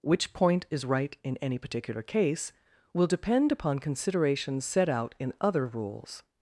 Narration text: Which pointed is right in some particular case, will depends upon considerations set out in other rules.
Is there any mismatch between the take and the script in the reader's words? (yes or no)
yes